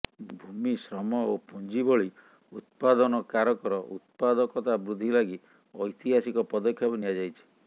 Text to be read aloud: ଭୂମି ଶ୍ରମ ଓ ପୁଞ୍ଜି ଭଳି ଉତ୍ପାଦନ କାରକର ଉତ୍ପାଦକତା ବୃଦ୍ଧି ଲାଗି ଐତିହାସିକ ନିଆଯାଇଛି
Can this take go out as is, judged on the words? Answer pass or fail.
fail